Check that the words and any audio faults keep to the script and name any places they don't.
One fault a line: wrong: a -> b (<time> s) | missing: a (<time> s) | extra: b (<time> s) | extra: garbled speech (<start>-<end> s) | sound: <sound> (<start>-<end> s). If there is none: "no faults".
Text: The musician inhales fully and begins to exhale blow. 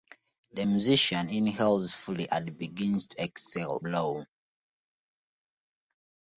no faults